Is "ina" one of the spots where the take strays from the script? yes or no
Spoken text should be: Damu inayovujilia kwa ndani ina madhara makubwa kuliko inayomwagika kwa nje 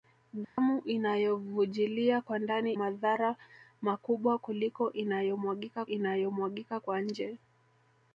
yes